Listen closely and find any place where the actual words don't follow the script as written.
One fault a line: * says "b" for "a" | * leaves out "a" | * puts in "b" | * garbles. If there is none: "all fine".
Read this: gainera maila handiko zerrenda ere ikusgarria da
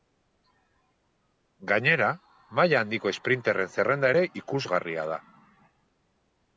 * puts in "esprinterren"